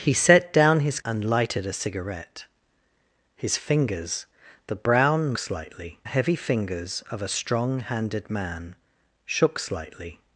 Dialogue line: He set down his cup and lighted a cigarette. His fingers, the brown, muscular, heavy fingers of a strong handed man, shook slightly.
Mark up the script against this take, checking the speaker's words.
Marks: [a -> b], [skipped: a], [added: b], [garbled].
He set down his [skipped: cup] and lighted a cigarette. His fingers, the brown, [muscular, -> slightly] heavy fingers of a strong handed man, shook slightly.